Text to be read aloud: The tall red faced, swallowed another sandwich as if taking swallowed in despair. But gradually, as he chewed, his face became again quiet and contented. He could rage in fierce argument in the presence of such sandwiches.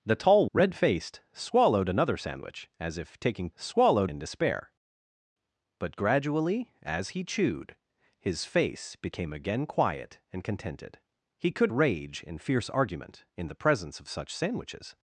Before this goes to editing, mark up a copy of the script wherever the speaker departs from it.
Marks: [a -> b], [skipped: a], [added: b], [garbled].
The tall red faced, swallowed another sandwich as if taking swallowed in despair. But gradually, as he chewed, his face became again quiet and contented. He could rage in fierce argument in the presence of such sandwiches.